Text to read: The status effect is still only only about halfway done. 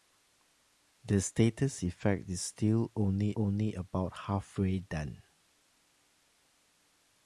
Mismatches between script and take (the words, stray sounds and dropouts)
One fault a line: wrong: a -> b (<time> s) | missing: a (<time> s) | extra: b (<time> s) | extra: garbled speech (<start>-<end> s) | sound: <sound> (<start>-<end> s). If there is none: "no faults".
no faults